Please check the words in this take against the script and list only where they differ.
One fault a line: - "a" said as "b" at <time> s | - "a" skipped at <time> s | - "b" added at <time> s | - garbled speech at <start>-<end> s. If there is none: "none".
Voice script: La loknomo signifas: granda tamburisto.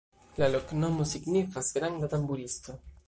none